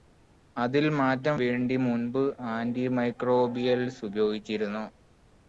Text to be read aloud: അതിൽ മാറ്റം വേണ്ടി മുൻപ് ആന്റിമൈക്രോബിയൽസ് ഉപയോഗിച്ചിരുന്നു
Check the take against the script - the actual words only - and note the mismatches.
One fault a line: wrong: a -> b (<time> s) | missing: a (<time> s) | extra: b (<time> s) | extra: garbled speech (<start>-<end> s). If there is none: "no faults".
no faults